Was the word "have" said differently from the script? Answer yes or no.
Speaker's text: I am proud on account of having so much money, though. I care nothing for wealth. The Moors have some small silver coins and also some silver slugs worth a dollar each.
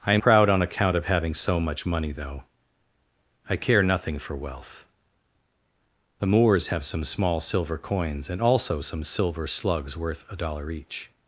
no